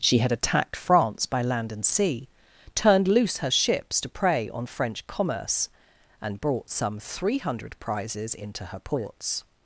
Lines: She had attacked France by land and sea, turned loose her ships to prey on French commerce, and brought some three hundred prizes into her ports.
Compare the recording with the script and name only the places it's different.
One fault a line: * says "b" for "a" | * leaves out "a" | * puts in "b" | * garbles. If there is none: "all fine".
all fine